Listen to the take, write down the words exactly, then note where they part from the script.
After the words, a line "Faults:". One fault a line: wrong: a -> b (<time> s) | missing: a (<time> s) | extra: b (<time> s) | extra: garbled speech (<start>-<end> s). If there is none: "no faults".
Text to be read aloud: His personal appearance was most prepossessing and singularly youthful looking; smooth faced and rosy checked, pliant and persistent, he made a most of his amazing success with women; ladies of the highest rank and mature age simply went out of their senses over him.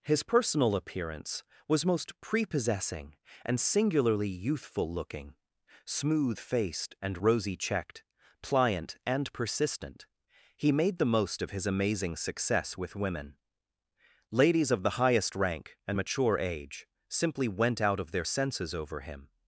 His personal appearance was most prepossessing and singularly youthful looking; smooth faced and rosy checked, pliant and persistent, he made the most of his amazing success with women; ladies of the highest rank and mature age simply went out of their senses over him.
Faults:
wrong: a -> the (11.0 s)